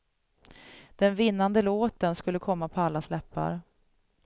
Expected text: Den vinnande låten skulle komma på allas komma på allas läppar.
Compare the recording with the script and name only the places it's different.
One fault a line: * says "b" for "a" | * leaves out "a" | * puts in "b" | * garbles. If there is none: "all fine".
* leaves out "komma på allas"